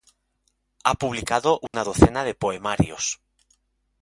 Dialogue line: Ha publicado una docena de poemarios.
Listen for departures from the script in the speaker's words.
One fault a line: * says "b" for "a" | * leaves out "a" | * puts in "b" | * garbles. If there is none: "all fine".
all fine